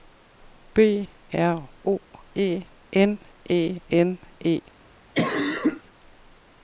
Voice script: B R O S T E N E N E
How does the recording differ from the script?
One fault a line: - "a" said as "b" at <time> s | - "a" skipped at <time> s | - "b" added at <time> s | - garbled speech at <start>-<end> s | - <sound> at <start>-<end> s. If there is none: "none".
- "S T" skipped at 2.0 s
- cough at 5.1-5.8 s